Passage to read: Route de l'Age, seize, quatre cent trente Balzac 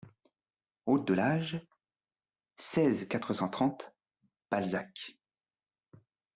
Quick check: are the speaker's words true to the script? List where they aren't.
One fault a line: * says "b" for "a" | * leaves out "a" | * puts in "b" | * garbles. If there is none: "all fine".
all fine